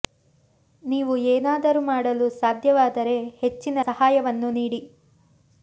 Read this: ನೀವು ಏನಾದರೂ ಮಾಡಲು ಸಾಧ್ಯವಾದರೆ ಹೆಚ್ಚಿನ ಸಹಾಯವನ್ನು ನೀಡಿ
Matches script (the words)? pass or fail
pass